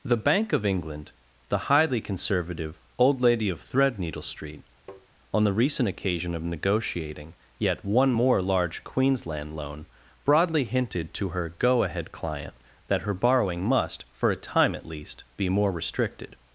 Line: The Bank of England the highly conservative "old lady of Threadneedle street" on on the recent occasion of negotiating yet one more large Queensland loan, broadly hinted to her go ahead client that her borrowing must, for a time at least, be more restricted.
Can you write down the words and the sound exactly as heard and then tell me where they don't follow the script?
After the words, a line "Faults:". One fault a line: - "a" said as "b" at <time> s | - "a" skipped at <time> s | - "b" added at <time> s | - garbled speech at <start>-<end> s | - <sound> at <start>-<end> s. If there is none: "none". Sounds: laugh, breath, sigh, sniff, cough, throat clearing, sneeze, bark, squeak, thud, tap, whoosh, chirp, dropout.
The Bank of England the highly conservative "old lady of Threadneedle street" on the recent occasion of negotiating yet one more large Queensland loan, broadly hinted to her go ahead client that her borrowing must, for a time at least, be more restricted.
Faults:
- tap at 4.9-5.1 s
- "on" skipped at 5.4 s